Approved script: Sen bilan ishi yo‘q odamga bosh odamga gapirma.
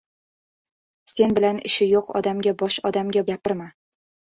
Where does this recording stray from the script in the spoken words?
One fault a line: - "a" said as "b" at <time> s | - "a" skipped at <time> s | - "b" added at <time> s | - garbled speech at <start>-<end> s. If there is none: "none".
none